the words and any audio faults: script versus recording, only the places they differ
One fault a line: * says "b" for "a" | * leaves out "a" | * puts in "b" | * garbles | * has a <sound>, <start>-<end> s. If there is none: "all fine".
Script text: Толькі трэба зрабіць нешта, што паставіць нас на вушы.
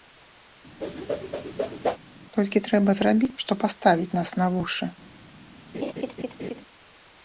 * has a whoosh, 0.8-2.0 s
* leaves out "нешта"
* has a laugh, 5.7-6.6 s